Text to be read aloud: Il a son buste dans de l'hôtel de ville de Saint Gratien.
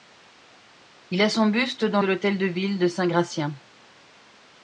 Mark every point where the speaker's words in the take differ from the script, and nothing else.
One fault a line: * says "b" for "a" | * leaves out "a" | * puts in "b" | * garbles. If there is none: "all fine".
all fine